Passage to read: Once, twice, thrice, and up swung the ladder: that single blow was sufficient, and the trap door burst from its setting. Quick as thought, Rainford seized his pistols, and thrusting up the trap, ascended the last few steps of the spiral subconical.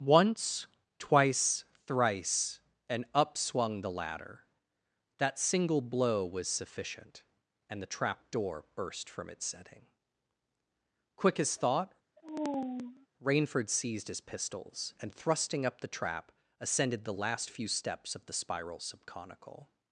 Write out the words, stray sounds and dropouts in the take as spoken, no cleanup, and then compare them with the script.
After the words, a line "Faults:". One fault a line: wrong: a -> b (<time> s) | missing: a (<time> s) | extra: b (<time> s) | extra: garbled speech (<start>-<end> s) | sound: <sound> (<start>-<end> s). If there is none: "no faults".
Once, twice, thrice, and up swung the ladder: that single blow was sufficient, and the trap door burst from its setting. Quick as thought, Rainford seized his pistols, and thrusting up the trap, ascended the last few steps of the spiral subconical.
Faults:
sound: sigh (12.2-13.1 s)